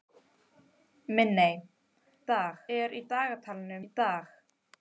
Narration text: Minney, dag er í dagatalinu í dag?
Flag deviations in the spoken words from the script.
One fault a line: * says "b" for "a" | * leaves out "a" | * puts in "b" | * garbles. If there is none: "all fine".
all fine